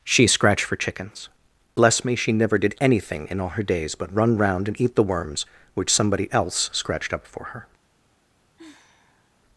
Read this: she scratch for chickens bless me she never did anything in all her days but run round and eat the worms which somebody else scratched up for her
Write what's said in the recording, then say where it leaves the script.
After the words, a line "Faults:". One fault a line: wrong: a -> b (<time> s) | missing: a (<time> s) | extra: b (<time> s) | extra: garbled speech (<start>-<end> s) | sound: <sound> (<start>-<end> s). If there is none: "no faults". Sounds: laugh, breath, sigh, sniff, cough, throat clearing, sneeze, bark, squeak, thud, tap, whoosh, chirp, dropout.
she scratched for chickens bless me she never did anything in all her days but run round and eat the worms which somebody else scratched up for her
Faults:
wrong: scratch -> scratched (0.3 s)
sound: sigh (8.6-9.4 s)